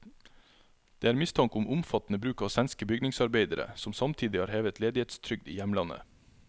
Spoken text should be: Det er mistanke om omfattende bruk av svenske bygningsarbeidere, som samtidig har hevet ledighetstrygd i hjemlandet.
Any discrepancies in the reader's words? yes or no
no